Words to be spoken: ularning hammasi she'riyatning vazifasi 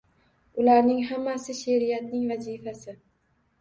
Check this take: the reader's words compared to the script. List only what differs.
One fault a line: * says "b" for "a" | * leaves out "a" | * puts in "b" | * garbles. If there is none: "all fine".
all fine